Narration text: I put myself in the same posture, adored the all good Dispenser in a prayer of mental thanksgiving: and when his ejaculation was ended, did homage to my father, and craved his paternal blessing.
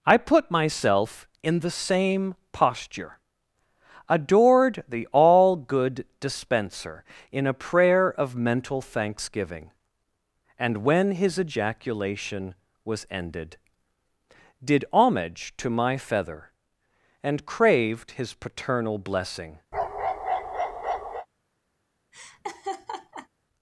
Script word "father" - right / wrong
wrong